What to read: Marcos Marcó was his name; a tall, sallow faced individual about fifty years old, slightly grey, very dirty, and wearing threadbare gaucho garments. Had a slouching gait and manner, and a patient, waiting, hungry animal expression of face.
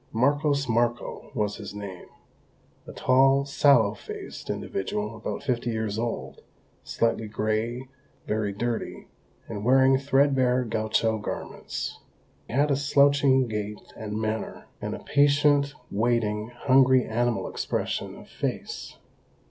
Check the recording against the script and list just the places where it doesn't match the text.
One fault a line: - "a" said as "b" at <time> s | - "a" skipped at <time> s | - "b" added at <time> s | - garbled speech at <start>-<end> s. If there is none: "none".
none